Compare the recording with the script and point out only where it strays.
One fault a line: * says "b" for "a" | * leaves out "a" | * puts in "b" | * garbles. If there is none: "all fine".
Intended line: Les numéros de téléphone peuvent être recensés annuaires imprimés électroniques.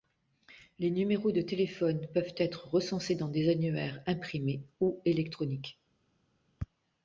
* puts in "dans des"
* puts in "ou"